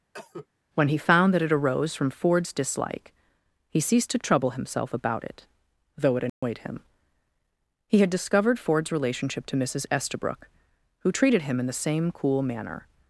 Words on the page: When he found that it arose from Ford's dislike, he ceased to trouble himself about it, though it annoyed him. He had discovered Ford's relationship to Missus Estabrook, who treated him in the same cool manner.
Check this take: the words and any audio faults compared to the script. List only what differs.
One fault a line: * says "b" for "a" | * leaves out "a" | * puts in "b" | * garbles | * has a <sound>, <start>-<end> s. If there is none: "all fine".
* has a cough, 0.1-0.5 s
* has a dropout, 6.3-6.4 s